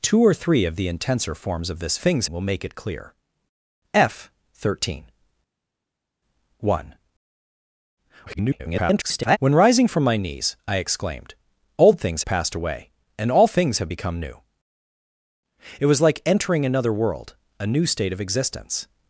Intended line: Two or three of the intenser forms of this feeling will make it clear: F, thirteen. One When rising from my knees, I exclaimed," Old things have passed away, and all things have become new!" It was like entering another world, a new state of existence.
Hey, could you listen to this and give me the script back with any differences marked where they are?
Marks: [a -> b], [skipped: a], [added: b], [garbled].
Two or three of the intenser forms of this [feeling -> things] will make it clear: F, thirteen. One [garbled] When rising from my knees, I exclaimed," Old things [skipped: have] passed away, and all things have become new!" It was like entering another world, a new state of existence.